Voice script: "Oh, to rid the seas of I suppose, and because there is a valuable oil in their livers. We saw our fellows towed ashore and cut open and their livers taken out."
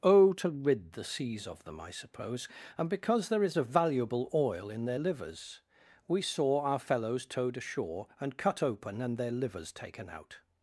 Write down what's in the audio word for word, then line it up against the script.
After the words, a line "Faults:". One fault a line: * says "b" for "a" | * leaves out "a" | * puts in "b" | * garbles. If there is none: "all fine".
"Oh, to rid the seas of them, I suppose, and because there is a valuable oil in their livers. We saw our fellows towed ashore and cut open and their livers taken out."
Faults:
* puts in "them"